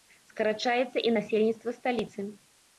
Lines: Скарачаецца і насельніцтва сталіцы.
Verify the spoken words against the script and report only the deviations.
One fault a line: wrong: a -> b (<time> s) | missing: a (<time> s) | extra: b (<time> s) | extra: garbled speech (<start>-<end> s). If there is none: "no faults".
no faults